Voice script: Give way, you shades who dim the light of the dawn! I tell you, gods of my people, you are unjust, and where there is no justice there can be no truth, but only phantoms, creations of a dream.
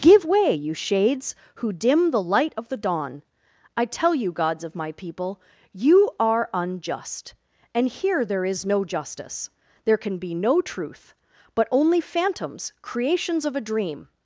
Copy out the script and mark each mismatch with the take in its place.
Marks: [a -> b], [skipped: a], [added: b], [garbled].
Give way, you shades who dim the light of the dawn! I tell you, gods of my people, you are unjust, and [where -> here] there is no justice there can be no truth, but only phantoms, creations of a dream.